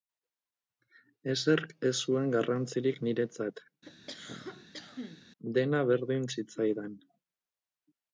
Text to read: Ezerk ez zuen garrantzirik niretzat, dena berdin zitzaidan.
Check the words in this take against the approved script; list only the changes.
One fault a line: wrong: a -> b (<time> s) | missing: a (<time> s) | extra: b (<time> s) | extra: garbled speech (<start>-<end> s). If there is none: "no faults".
no faults